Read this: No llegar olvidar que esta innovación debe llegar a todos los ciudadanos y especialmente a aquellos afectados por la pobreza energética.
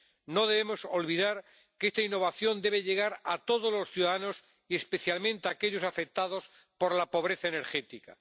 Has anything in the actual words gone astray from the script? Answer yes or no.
yes